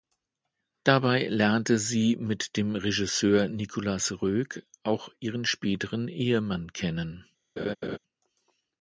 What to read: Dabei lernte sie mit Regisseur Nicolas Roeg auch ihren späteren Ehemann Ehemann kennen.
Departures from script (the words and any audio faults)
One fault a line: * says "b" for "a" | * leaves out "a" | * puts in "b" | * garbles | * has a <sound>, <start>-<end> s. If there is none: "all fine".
* puts in "dem"
* leaves out "Ehemann"
* has a laugh, 7.6-8.0 s